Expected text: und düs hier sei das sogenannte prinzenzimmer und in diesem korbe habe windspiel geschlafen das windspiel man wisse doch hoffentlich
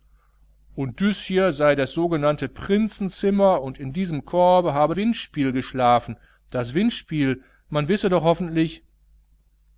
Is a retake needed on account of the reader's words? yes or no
no